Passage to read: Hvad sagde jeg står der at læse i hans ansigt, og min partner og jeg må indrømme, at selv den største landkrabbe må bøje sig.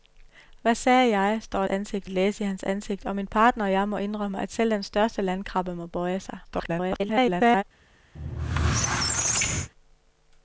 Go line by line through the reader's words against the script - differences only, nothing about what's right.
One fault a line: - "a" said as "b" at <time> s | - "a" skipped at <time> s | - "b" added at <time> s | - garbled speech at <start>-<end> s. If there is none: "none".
- "der" said as "ansigt" at 1.7 s
- garbled speech at 6.4-7.6 s